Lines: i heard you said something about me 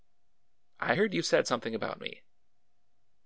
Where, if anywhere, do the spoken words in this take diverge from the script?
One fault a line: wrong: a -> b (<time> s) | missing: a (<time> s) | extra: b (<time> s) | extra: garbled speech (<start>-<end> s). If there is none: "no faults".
no faults